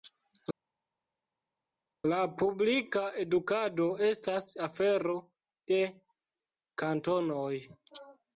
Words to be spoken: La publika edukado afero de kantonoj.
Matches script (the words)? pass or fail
fail